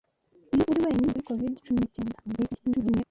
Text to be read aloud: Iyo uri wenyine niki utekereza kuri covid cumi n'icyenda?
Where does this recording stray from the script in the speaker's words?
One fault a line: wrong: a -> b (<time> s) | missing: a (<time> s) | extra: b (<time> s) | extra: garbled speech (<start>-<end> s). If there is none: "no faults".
missing: niki utekereza (1.1 s)
extra: garbled speech (2.3-3.0 s)